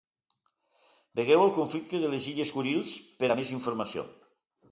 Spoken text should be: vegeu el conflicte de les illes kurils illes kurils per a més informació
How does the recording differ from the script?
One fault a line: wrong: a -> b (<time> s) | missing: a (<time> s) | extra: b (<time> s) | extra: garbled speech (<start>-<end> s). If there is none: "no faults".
missing: illes kurils (2.9 s)